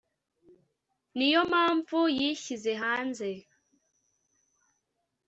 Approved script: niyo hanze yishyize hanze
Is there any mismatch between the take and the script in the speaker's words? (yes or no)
yes